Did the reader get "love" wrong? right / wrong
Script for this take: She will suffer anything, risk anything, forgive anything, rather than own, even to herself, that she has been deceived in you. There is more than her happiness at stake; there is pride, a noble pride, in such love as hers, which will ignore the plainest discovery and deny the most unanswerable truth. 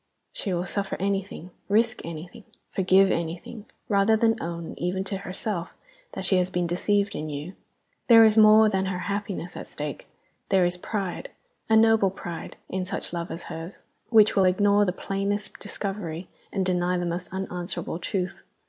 right